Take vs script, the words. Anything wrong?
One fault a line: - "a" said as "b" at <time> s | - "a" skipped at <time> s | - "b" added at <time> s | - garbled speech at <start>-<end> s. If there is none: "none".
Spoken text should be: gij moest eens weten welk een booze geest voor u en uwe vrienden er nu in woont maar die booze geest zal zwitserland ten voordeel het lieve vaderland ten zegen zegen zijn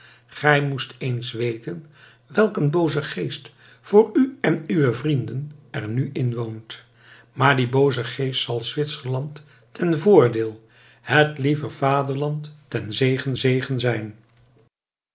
none